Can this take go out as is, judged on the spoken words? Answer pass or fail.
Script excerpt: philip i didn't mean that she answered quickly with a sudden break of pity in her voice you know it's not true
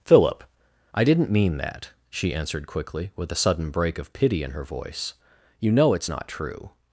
pass